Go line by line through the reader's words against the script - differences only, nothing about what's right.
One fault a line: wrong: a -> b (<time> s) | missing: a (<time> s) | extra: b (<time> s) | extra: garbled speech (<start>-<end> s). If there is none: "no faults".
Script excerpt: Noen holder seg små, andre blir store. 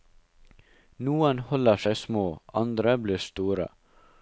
no faults